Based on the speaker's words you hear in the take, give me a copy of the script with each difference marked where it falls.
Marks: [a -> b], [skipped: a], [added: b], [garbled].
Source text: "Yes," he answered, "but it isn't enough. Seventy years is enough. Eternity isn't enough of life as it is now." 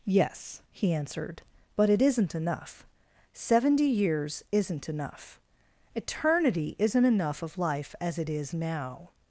"Yes," he answered, "but it isn't enough. Seventy years [is -> isn't] enough. Eternity isn't enough of life as it is now."